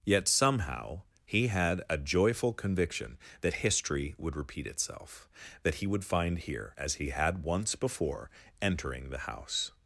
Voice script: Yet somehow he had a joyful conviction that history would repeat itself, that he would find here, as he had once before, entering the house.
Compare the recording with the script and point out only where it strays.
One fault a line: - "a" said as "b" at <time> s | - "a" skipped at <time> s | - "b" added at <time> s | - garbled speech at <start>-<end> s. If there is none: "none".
none